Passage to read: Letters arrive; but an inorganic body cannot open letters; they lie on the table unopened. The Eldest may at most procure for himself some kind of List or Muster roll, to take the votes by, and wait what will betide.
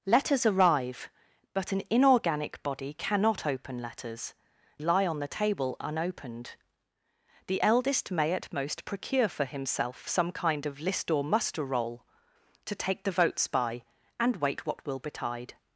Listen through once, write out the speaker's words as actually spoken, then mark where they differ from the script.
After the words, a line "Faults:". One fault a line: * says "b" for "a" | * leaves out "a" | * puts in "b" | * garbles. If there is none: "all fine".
Letters arrive; but an inorganic body cannot open letters; lie on the table unopened. The Eldest may at most procure for himself some kind of List or Muster roll, to take the votes by, and wait what will betide.
Faults:
* leaves out "they"